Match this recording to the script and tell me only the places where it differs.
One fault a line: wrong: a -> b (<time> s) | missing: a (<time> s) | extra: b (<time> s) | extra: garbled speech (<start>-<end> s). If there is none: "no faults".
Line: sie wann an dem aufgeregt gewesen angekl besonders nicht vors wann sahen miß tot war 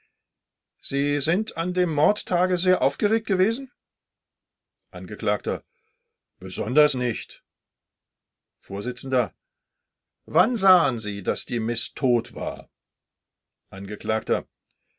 wrong: wann -> sind (1.2 s)
extra: mordtage sehr (1.9 s)
extra: sie daß die (11.0 s)